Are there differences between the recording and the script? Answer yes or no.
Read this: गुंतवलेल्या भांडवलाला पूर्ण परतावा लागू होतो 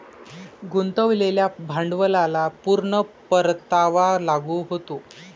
no